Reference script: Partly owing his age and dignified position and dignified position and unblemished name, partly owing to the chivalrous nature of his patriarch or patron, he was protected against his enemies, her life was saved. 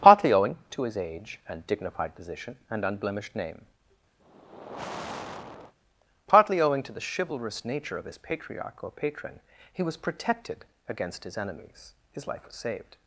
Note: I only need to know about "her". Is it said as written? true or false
false